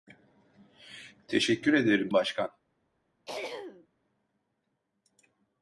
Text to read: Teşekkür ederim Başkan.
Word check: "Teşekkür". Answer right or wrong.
right